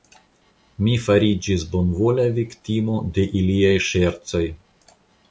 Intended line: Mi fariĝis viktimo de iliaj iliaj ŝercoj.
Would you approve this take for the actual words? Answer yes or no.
no